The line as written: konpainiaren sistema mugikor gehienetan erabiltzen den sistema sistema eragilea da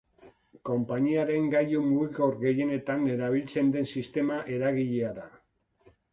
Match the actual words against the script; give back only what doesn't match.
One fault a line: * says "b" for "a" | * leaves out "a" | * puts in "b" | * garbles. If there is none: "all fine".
* says "gailu" for "sistema"
* leaves out "sistema"